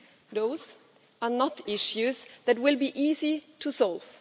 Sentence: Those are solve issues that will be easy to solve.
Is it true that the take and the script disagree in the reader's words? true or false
true